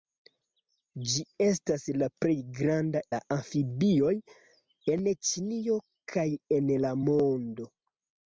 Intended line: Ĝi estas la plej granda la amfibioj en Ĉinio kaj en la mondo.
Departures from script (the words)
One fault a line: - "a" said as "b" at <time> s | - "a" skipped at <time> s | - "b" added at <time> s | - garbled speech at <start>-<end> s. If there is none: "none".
none